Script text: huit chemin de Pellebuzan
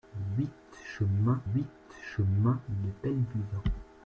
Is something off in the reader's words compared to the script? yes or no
yes